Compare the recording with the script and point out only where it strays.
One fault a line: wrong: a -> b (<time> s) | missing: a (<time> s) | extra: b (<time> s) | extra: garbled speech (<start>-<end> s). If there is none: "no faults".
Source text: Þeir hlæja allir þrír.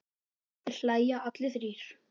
no faults